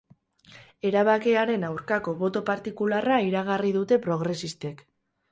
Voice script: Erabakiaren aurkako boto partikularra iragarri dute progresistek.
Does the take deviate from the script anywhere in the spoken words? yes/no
no